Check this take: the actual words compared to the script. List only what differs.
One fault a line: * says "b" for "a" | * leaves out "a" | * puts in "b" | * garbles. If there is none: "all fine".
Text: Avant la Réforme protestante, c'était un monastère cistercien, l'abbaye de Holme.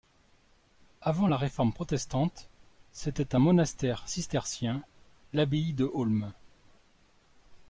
all fine